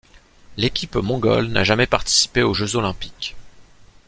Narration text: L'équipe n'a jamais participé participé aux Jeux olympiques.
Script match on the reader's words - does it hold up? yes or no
no